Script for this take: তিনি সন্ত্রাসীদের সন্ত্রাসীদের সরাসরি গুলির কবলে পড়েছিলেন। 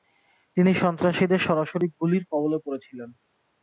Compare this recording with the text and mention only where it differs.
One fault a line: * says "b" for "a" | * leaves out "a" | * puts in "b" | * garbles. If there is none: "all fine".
* leaves out "সন্ত্রাসীদের"